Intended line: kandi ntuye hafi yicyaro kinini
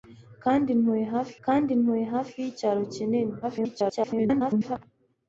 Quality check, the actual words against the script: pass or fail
fail